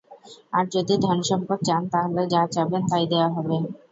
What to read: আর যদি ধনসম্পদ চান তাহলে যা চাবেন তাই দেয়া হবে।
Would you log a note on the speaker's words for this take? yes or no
no